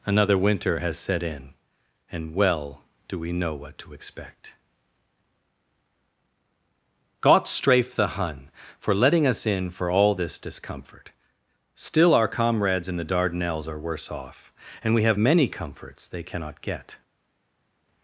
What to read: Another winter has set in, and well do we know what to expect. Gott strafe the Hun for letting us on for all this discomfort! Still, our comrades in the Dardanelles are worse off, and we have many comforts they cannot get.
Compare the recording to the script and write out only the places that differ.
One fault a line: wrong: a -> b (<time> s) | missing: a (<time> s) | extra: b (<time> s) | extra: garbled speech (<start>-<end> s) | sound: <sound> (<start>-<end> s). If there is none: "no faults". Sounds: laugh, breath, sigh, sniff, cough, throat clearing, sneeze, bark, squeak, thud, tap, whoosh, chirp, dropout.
wrong: on -> in (9.4 s)